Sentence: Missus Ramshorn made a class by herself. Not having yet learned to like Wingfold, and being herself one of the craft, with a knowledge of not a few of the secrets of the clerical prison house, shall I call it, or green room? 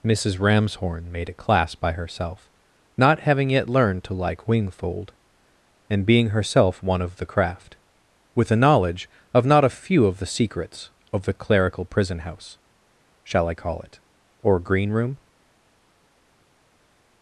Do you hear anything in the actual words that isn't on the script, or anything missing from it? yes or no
no